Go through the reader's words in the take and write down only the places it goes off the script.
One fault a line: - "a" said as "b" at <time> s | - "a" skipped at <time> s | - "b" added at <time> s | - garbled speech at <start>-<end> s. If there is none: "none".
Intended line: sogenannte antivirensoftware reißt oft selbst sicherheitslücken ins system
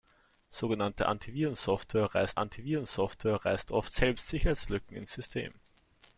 - "antivirensoftware reißt" added at 2.4 s